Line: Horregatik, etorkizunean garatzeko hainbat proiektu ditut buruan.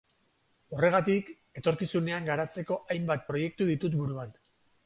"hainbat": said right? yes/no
yes